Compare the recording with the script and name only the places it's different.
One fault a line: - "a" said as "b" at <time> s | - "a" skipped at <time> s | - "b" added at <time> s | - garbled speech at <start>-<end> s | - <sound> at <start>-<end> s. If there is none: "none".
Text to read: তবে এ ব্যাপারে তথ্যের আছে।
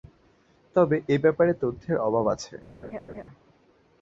- "অভাব" added at 2.1 s
- laugh at 2.8-3.2 s